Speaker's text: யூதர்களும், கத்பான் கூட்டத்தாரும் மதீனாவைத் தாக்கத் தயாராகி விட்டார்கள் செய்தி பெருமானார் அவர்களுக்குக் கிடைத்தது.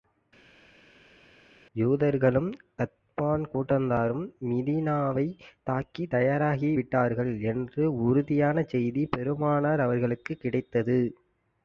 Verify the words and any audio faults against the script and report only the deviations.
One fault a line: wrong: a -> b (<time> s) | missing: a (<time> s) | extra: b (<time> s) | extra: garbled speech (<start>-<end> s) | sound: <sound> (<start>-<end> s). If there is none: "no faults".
extra: என்ற உறுதியான (7.4 s)